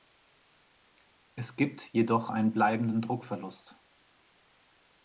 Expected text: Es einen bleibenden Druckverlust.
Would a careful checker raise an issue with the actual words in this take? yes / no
yes